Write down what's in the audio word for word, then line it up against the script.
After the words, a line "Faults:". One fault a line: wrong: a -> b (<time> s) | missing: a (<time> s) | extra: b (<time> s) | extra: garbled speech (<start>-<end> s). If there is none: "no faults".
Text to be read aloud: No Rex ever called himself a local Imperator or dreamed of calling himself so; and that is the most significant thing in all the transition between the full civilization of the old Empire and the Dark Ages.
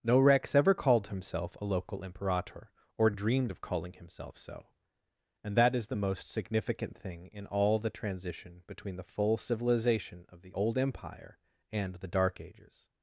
No Rex ever called himself a local Imperator or dreamed of calling himself so; and that is the most significant thing in all the transition between the full civilization of the old Empire and the Dark Ages.
Faults:
no faults